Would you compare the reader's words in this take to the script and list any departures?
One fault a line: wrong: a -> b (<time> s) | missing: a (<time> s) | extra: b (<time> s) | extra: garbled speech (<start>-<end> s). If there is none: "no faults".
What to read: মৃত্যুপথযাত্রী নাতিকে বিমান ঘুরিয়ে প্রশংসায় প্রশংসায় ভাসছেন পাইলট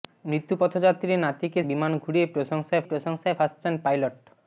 no faults